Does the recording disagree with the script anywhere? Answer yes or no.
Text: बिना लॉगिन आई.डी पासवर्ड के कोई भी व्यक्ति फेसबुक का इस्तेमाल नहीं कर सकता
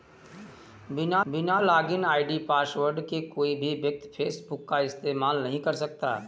yes